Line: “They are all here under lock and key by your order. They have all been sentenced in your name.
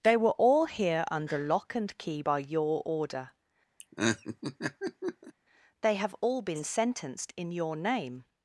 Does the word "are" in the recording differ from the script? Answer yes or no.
yes